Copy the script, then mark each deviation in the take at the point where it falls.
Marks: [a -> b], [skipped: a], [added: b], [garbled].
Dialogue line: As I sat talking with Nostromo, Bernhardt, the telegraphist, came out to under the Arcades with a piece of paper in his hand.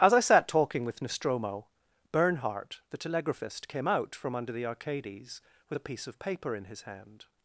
As I sat talking with Nostromo, Bernhardt, the telegraphist, came out [to -> from] under the Arcades with a piece of paper in his hand.